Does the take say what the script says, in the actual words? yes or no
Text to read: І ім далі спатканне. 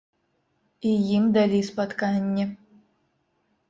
yes